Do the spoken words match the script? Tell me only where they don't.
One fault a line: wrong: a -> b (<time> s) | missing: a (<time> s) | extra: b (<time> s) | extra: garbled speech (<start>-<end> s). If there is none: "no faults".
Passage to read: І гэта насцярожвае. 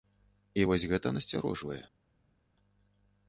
extra: вось (0.7 s)